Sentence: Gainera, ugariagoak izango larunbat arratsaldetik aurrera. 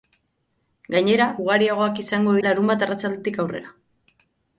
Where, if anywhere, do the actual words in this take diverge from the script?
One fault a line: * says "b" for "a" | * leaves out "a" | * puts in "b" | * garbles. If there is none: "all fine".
all fine